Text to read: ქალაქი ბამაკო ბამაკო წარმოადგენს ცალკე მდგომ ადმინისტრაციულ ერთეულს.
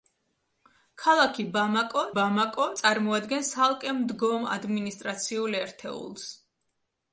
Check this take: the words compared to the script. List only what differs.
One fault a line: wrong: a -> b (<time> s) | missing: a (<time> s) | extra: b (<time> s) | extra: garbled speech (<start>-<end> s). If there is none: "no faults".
no faults